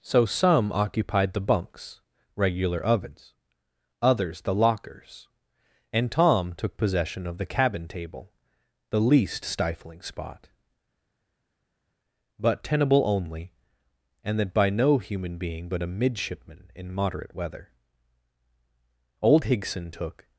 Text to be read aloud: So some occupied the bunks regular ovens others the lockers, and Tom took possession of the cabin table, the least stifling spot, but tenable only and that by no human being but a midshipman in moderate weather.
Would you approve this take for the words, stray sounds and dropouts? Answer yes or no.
no